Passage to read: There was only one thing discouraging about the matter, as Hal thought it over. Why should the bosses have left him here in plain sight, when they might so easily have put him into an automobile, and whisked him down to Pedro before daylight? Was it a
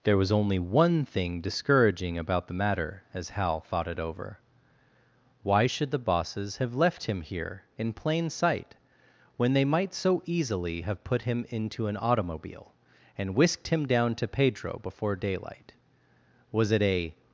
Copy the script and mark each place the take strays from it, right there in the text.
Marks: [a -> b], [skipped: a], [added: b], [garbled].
There was only one thing discouraging about the matter, as Hal thought it over. Why should the bosses have left him here in plain sight, when they might so easily have put him into an automobile, and whisked him down to Pedro before daylight? Was it a